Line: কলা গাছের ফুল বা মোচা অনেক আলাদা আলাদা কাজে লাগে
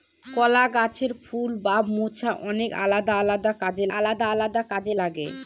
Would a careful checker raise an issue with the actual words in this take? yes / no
yes